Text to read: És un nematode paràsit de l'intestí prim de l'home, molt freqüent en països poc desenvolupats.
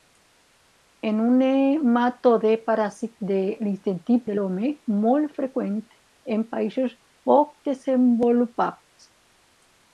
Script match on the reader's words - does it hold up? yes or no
no